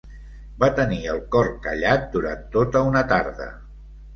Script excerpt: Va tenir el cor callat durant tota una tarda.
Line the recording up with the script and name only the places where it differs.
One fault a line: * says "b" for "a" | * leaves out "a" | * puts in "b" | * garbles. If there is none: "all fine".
all fine